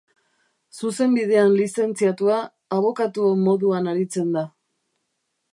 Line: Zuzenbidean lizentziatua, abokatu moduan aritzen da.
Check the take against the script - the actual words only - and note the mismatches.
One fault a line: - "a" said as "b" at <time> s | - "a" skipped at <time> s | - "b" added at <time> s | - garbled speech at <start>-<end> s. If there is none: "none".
none